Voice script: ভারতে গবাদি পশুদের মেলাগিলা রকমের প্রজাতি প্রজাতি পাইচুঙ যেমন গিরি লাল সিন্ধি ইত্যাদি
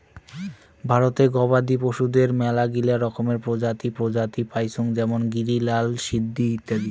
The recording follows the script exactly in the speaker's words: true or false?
true